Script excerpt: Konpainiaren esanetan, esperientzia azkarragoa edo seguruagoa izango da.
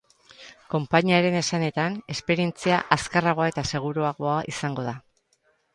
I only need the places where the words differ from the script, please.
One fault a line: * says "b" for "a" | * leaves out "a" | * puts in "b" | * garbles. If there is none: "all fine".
* says "eta" for "edo"